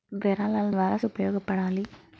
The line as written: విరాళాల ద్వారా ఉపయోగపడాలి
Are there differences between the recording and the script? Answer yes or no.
no